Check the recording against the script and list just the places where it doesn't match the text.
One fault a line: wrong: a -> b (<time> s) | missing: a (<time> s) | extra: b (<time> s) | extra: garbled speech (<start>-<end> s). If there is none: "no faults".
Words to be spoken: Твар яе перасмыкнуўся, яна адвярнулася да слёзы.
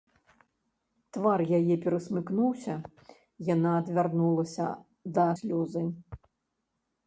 no faults